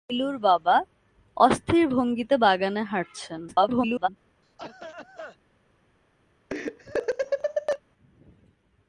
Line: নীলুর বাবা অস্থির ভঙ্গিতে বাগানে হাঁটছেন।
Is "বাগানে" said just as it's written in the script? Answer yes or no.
yes